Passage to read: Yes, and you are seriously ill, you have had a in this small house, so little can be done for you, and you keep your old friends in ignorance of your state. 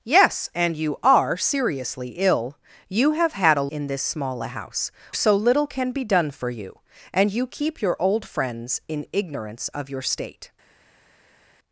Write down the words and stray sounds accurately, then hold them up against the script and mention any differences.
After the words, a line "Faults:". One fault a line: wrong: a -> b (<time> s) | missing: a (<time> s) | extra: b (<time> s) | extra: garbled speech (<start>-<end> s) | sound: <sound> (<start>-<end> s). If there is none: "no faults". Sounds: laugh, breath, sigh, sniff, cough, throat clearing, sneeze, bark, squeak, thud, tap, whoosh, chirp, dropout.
Yes, and you are seriously ill, you have had a in this small house, so little can be done for you, and you keep your old friends in ignorance of your state.
Faults:
no faults